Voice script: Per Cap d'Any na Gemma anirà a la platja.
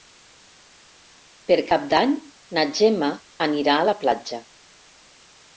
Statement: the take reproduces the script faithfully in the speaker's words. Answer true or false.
true